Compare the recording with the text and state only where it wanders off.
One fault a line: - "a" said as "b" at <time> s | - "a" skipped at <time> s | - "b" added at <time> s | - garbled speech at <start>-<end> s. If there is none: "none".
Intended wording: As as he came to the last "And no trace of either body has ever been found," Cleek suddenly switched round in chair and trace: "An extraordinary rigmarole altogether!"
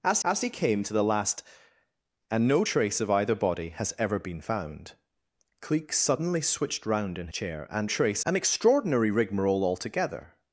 none